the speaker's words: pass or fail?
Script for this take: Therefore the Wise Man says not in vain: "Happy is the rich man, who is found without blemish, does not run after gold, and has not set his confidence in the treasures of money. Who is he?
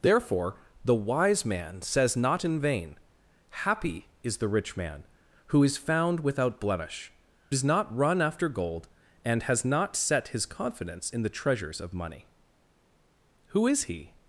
pass